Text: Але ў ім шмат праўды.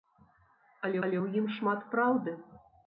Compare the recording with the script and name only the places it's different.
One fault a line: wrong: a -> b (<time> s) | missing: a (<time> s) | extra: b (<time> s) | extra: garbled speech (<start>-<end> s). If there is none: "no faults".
extra: але (1.1 s)